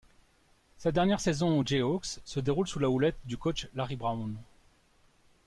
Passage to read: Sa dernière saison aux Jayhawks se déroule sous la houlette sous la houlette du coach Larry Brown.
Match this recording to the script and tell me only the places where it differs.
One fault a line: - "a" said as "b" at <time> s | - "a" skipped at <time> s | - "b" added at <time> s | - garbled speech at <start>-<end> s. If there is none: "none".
- "sous la houlette" skipped at 3.2 s